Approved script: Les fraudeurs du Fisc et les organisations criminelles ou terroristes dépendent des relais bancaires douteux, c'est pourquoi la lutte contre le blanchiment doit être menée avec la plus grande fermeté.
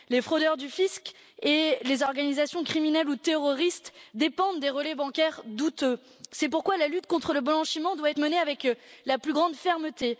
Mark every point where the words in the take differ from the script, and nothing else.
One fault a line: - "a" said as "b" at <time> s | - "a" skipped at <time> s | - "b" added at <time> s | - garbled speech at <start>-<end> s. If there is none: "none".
none